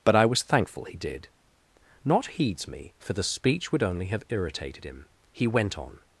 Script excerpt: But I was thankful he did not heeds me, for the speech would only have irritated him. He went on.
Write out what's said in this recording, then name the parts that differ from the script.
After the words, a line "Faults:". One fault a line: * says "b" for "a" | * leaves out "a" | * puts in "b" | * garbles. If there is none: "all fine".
But I was thankful he did not heeds me, for the speech would only have irritated him. He went on.
Faults:
all fine